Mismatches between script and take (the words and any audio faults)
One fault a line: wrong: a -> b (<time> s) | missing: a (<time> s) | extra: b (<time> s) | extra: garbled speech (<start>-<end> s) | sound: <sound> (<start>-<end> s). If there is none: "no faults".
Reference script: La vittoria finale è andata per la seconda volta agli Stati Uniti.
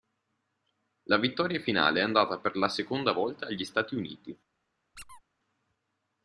sound: squeak (5.0-5.2 s)